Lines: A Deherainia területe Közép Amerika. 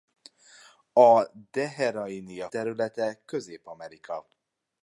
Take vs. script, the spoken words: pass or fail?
pass